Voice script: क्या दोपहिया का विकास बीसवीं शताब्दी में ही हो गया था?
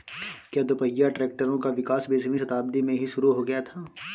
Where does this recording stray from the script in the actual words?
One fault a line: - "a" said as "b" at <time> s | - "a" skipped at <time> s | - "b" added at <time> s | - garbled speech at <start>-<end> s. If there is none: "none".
- "ट्रैक्टरों" added at 1.1 s
- "शुरु" added at 3.1 s